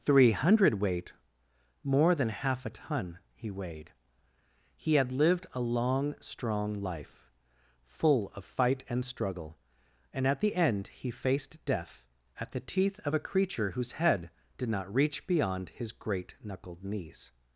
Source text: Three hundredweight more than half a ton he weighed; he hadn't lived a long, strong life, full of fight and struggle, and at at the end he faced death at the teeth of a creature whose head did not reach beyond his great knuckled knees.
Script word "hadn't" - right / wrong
wrong